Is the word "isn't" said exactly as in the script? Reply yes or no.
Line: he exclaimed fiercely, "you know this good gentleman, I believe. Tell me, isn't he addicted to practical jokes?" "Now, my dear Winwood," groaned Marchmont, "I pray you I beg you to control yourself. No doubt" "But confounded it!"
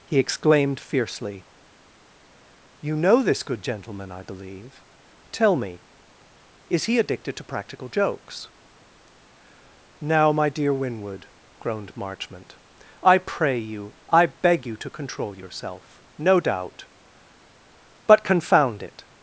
no